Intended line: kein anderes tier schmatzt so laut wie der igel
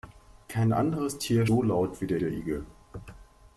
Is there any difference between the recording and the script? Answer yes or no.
yes